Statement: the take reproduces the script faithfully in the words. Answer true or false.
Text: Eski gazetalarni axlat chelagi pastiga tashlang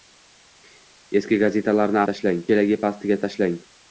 false